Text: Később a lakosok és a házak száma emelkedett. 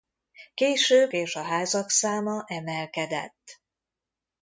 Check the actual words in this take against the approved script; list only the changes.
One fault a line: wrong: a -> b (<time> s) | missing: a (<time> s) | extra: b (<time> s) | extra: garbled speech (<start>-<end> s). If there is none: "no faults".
missing: a lakosok (1.1 s)